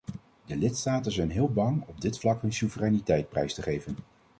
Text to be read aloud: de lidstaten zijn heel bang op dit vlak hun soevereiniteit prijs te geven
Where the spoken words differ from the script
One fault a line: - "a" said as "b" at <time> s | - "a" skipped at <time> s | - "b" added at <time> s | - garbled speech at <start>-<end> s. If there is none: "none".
none